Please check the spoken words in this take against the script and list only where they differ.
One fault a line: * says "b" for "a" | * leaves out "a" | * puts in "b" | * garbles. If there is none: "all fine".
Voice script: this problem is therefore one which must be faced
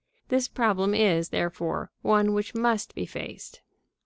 all fine